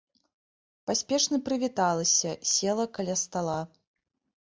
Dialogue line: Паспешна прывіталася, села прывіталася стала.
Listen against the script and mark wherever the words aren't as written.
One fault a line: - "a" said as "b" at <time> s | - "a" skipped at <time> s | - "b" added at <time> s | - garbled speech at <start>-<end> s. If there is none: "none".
- "прывіталася" said as "каля" at 3.0 s